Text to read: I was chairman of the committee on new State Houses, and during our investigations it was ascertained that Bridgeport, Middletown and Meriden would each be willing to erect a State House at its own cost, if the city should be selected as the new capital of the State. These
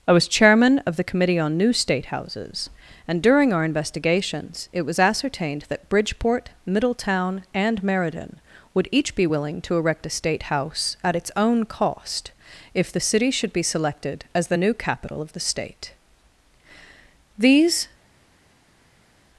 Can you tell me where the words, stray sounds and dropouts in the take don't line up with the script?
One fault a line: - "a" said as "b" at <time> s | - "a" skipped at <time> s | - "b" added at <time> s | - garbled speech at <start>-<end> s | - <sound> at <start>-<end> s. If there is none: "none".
none